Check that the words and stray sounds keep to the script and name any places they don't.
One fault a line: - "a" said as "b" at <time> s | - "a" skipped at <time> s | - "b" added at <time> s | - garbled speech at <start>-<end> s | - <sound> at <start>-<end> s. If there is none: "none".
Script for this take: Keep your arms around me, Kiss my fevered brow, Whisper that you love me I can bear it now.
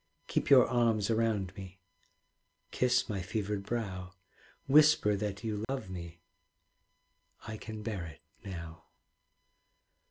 - dropout at 5.6-5.7 s